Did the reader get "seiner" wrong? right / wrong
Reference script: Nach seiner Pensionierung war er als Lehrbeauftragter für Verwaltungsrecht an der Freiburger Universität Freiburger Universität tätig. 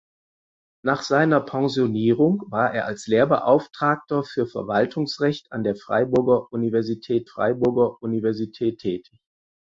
right